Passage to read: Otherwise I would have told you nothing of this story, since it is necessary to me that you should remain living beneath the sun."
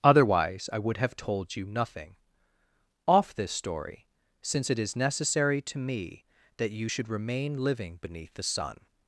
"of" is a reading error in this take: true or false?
true